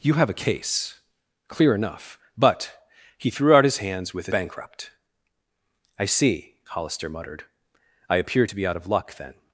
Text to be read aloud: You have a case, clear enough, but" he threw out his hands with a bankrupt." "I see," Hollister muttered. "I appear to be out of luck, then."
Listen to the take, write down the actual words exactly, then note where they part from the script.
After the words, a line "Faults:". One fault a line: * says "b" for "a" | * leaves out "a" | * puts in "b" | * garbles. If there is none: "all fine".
You have a case, clear enough, but" he threw out his hands with a bankrupt." "I see," Hollister muttered. "I appear to be out of luck, then."
Faults:
all fine